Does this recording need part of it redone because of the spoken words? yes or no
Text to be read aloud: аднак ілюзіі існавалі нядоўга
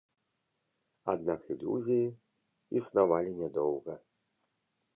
no